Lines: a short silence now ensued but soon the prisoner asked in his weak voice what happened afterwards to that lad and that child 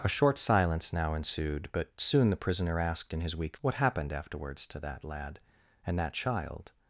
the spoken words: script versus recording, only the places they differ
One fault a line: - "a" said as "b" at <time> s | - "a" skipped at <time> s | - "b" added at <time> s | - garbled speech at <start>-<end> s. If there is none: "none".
- "voice" skipped at 3.6 s